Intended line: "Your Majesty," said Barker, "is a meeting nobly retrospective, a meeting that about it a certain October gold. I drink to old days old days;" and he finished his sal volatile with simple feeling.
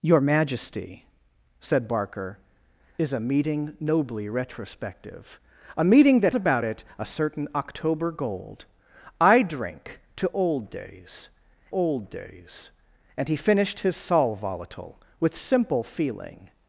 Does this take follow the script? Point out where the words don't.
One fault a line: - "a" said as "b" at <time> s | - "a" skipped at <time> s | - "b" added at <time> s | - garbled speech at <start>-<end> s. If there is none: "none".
none